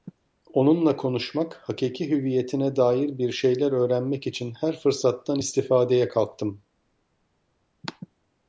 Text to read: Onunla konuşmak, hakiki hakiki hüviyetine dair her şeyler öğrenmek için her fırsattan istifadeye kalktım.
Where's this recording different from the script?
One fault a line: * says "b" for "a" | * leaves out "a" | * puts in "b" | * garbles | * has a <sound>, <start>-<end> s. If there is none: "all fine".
* leaves out "hakiki"
* says "bir" for "her"